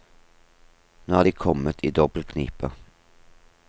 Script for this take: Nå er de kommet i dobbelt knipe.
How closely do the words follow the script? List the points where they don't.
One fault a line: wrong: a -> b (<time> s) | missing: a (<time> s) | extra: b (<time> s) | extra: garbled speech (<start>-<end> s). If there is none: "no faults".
no faults